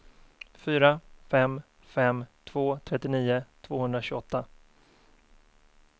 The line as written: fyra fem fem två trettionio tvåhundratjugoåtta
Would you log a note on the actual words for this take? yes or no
no